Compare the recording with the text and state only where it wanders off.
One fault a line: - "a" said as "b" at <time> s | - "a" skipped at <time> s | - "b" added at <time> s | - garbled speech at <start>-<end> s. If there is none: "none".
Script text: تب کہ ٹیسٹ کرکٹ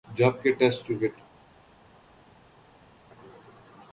- "تب" said as "جب" at 0.1 s